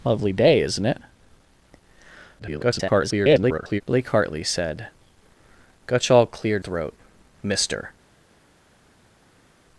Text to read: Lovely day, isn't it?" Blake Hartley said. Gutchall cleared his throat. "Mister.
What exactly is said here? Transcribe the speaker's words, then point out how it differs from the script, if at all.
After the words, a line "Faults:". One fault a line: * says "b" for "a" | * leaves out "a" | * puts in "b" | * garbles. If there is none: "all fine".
Lovely day, isn't it?" [garbled] Blake Hartley said. Gutchall cleared throat. "Mister.
Faults:
* garbles
* leaves out "his"